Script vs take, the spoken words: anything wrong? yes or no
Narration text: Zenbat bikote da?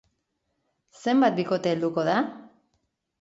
yes